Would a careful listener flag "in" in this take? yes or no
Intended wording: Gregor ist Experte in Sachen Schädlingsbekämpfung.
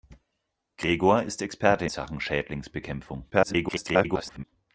yes